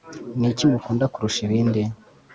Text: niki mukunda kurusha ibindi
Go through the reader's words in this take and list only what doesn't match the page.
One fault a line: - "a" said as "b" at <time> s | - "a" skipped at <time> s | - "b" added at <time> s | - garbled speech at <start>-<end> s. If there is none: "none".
none